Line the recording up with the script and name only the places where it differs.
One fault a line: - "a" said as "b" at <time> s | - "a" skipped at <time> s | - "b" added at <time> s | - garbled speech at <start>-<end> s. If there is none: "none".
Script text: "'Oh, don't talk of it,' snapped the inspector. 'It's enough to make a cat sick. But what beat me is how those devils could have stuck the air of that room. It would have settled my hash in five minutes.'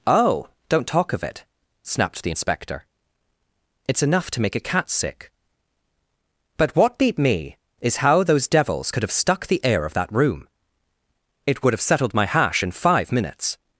none